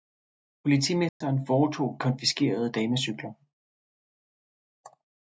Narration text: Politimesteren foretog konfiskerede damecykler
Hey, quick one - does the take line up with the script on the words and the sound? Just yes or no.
no